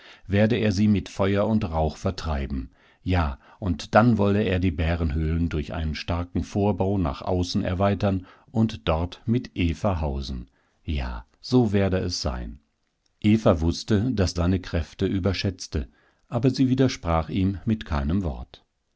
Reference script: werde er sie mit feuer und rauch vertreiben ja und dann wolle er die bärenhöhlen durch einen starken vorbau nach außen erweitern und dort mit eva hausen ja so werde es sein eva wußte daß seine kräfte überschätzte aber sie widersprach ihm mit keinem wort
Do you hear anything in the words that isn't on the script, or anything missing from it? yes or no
no